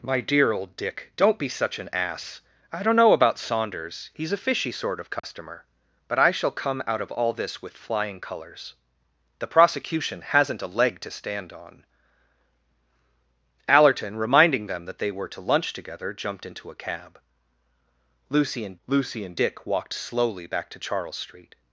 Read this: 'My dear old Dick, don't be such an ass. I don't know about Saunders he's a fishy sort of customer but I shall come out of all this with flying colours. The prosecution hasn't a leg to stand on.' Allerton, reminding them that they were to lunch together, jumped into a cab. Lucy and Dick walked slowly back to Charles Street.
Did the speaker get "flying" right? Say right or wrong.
right